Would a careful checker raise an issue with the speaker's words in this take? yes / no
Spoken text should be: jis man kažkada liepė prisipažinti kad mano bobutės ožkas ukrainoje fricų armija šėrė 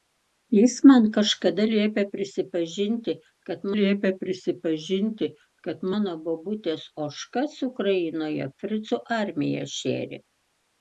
yes